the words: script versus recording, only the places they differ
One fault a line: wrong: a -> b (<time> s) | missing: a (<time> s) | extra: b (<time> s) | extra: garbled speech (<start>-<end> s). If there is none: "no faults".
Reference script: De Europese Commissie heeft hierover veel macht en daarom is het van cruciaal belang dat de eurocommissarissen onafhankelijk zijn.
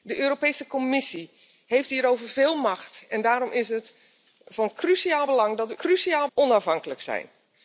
wrong: eurocommissarissen -> cruciaal (5.8 s)